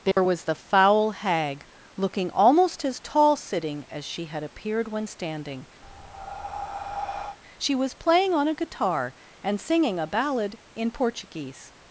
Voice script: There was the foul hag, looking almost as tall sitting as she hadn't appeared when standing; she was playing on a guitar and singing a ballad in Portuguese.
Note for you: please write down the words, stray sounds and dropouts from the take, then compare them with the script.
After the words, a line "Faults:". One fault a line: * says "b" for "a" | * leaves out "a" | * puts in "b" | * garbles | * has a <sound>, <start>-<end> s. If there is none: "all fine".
There was the foul hag, looking almost as tall sitting as she had appeared when standing; she was playing on a guitar and singing a ballad in Portuguese.
Faults:
* has a dropout, 0.1-0.2 s
* says "had" for "hadn't"
* has a breath, 5.8-7.4 s